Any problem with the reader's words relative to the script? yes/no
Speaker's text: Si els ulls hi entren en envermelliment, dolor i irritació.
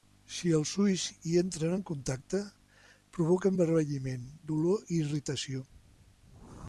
yes